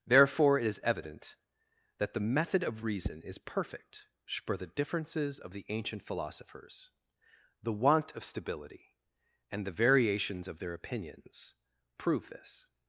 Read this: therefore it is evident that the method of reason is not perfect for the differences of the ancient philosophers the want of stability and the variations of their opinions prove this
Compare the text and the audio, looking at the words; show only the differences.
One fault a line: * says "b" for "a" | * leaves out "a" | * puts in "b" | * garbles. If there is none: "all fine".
* leaves out "not"